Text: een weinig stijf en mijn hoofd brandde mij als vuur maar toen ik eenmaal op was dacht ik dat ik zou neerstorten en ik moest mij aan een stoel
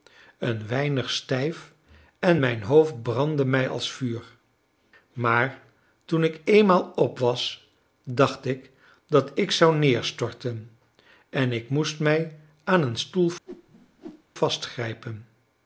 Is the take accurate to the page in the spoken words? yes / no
yes